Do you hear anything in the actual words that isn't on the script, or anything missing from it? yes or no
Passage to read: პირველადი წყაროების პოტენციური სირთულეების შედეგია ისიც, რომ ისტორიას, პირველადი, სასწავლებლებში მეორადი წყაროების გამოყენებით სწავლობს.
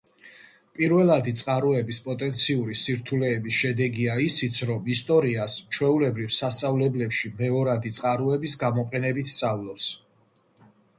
yes